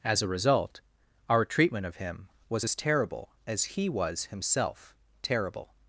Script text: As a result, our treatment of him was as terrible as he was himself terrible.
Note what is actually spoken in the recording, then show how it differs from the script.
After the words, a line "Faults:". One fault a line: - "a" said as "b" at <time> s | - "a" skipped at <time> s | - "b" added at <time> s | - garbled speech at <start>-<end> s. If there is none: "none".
As a result, our treatment of him was as terrible as he was himself terrible.
Faults:
none